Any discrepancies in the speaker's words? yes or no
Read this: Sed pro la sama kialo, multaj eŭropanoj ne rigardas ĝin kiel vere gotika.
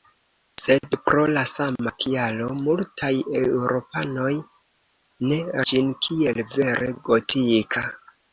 yes